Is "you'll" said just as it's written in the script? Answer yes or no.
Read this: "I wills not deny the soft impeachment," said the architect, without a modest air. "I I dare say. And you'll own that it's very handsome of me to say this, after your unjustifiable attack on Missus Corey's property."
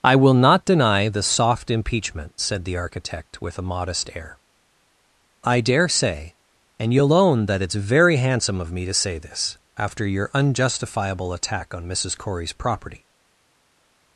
yes